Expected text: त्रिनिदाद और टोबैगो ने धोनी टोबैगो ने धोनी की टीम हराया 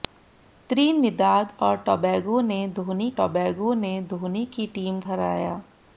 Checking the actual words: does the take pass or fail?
pass